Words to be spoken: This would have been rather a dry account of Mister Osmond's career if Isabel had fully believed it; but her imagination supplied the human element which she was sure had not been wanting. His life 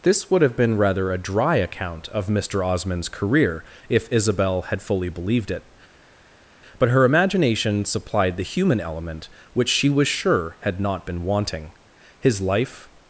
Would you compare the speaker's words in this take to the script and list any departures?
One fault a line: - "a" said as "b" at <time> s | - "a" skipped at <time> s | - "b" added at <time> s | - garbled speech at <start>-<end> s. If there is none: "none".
none